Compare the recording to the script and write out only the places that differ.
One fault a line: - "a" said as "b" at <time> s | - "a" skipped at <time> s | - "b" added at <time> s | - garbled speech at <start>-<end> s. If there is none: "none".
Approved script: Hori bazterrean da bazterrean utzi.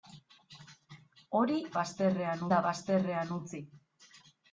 none